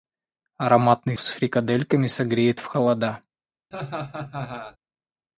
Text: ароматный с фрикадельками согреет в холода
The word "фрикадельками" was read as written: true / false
true